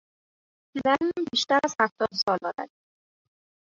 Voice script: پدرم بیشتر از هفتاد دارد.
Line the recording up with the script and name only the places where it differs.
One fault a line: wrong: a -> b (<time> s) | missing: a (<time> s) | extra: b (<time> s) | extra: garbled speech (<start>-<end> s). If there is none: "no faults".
extra: سال (2.1 s)